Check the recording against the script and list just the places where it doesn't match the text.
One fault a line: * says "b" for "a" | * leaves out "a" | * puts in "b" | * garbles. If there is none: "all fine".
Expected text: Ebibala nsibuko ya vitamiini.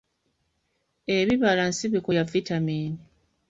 all fine